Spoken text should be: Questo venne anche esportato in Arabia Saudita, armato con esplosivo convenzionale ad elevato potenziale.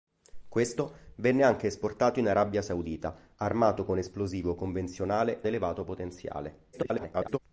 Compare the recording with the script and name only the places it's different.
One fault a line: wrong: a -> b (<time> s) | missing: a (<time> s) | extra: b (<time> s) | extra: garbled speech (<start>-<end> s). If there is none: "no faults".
missing: ad (5.4 s)
extra: garbled speech (6.7-7.4 s)